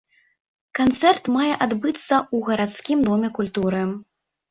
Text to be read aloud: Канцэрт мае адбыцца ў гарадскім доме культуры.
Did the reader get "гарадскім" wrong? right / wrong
right